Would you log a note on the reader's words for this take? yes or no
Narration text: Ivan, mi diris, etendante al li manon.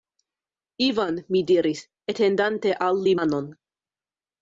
no